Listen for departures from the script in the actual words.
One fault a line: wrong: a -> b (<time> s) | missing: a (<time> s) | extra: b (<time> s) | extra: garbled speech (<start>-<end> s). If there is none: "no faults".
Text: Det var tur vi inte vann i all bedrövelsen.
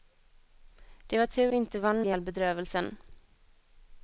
no faults